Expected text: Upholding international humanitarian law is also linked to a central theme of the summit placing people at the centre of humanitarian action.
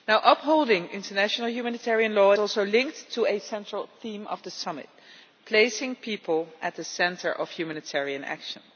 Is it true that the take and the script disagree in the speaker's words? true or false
true